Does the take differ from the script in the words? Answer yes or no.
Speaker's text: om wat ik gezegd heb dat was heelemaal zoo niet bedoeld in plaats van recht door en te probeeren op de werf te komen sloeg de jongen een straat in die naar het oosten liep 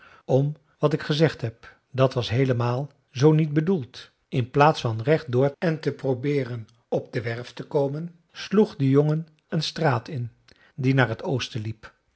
no